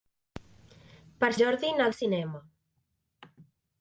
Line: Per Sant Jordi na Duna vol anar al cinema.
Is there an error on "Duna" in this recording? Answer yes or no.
yes